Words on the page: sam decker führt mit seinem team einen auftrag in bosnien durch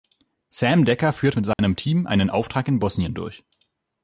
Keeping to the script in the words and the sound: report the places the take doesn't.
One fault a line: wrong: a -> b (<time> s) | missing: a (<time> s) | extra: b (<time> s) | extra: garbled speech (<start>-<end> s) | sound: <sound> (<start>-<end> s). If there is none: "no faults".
sound: dropout (1.5-1.6 s)